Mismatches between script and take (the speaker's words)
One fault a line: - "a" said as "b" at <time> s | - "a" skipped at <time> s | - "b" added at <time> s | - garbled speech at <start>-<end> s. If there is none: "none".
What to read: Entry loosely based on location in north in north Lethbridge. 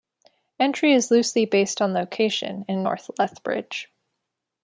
- "is" added at 0.9 s
- "in north" skipped at 3.1 s